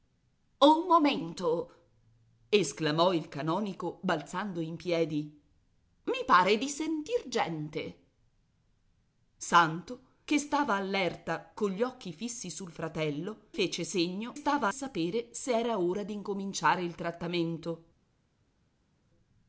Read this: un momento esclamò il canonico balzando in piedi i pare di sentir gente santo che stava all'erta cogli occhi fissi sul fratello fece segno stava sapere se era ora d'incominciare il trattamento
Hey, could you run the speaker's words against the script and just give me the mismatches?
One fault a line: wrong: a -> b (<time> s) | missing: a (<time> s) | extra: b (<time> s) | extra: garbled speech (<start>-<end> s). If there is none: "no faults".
no faults